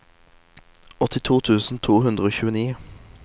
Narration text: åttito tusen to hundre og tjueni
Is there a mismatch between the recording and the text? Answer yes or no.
no